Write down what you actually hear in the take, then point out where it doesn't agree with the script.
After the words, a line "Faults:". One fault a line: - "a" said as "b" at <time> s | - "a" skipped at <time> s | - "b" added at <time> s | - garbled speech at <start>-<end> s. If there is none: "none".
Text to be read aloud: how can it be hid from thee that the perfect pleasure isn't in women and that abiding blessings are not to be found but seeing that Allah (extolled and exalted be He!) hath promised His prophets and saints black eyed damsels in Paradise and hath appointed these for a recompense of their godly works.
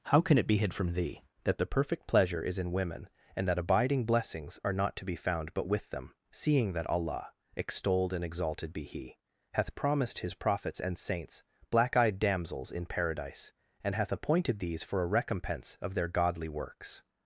how can it be hid from thee that the perfect pleasure is in women and that abiding blessings are not to be found but with them, seeing that Allah (extolled and exalted be He!) hath promised His prophets and saints black eyed damsels in Paradise and hath appointed these for a recompense of their godly works.
Faults:
- "isn't" said as "is" at 2.4 s
- "with them" added at 5.7 s